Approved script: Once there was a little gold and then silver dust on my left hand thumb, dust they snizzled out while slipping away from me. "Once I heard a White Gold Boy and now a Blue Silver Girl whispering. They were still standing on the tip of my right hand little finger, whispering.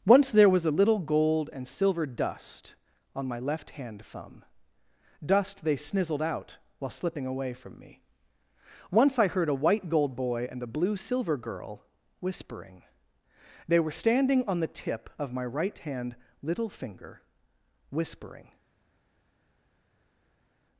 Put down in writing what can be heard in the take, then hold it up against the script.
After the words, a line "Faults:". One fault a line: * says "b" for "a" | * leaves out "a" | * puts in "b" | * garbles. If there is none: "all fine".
Once there was a little gold and silver dust on my left hand thumb, dust they snizzled out while slipping away from me. "Once I heard a White Gold Boy and a Blue Silver Girl whispering. They were standing on the tip of my right hand little finger, whispering.
Faults:
* leaves out "then"
* leaves out "now"
* leaves out "still"